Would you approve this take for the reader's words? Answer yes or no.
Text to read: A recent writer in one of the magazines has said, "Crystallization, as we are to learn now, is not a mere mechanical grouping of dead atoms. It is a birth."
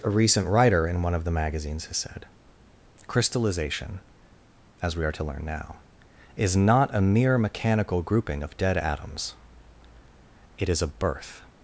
yes